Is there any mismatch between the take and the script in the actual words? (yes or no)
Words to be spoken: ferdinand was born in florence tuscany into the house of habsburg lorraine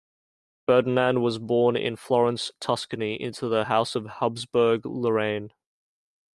no